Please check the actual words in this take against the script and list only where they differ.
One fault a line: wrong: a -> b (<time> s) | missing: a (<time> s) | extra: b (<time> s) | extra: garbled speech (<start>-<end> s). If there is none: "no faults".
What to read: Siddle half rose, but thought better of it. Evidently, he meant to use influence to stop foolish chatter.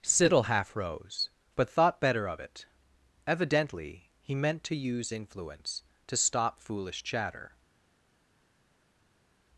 no faults